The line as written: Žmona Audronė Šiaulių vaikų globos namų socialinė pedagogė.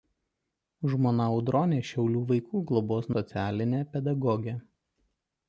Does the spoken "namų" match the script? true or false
false